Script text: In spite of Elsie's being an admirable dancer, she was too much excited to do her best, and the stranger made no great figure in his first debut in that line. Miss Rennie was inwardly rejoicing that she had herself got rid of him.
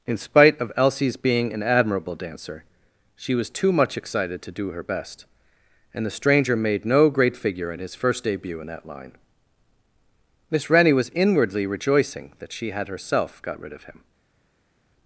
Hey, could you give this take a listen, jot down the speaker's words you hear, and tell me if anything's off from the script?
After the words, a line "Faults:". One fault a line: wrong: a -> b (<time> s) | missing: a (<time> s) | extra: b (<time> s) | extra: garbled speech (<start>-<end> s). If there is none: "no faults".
In spite of Elsie's being an admirable dancer, she was too much excited to do her best, and the stranger made no great figure in his first debut in that line. Miss Rennie was inwardly rejoicing that she had herself got rid of him.
Faults:
no faults